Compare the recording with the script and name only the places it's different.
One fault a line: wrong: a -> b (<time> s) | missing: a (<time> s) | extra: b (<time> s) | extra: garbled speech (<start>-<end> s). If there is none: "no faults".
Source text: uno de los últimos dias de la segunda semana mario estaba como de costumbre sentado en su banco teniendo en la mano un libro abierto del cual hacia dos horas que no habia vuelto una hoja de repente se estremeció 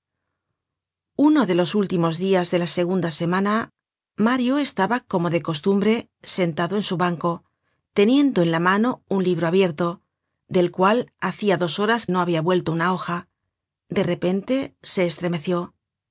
missing: que (12.1 s)